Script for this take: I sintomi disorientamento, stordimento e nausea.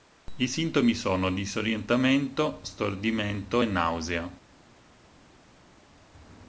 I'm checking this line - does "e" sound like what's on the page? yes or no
yes